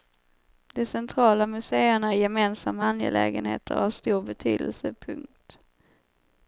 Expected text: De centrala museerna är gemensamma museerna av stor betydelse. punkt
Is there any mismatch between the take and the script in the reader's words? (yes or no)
yes